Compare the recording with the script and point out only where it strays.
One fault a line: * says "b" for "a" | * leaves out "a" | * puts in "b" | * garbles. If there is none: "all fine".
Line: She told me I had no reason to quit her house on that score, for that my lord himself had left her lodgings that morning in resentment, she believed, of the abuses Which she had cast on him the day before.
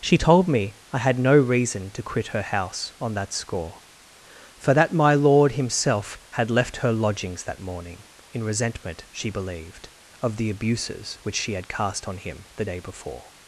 all fine